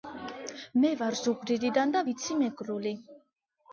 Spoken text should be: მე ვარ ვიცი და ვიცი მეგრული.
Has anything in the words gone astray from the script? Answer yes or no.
yes